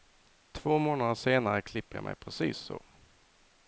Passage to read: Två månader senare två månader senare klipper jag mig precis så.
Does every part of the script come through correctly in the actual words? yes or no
no